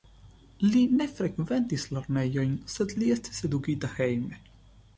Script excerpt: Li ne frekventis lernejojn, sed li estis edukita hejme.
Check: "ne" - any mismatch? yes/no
no